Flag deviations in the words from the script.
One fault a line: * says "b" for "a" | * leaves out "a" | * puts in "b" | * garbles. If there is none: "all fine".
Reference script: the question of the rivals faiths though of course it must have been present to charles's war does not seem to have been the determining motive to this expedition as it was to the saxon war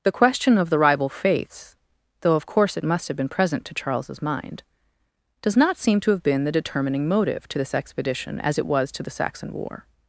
* says "rival" for "rivals"
* says "mind" for "war"